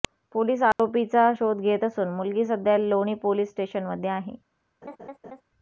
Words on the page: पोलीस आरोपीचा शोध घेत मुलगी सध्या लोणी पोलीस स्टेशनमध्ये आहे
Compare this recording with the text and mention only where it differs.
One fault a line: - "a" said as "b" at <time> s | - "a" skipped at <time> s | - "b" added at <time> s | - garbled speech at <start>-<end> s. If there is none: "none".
- "असून" added at 1.8 s